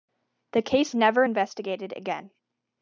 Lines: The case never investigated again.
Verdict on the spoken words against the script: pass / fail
pass